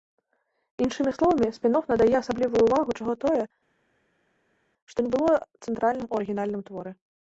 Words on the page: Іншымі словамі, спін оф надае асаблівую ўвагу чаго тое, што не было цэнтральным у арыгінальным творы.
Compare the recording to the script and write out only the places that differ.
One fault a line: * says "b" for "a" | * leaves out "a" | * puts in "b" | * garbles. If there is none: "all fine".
all fine